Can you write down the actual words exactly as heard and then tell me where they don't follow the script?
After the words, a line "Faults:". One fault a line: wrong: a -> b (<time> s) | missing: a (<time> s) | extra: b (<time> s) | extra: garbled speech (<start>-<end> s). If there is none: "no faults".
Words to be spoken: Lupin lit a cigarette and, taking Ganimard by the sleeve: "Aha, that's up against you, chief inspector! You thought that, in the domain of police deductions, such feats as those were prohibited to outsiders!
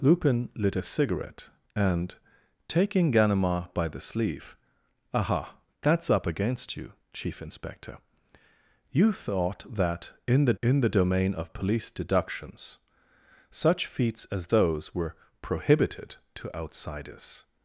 Lupin lit a cigarette and, taking Ganimard by the sleeve: "Aha, that's up against you, chief inspector! You thought that, in the in the domain of police deductions, such feats as those were prohibited to outsiders!
Faults:
extra: in the (10.6 s)